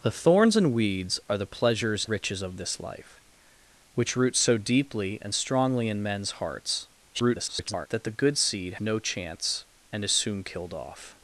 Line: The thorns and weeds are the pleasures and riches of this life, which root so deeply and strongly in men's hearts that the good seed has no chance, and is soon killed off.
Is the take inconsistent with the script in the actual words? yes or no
yes